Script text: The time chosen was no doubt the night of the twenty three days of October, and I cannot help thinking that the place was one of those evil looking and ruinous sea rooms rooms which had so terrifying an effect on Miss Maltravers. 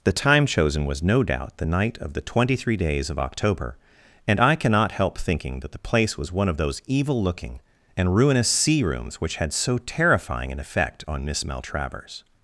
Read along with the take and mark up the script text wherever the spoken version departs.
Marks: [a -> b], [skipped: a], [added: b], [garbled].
The time chosen was no doubt the night of the twenty three days of October, and I cannot help thinking that the place was one of those evil looking and ruinous sea rooms [skipped: rooms] which had so terrifying an effect on Miss Maltravers.